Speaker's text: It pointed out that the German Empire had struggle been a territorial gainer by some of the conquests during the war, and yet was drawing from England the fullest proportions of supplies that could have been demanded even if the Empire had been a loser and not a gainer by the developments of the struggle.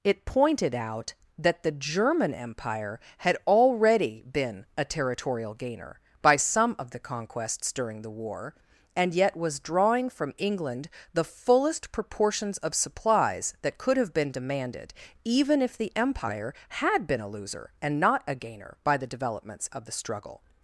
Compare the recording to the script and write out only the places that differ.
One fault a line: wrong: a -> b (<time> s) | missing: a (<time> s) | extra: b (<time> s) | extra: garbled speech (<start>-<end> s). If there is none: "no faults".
wrong: struggle -> already (3.5 s)